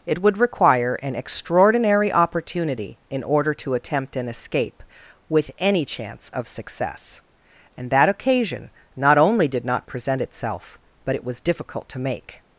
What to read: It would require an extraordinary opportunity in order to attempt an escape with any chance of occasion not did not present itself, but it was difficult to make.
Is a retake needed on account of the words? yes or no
yes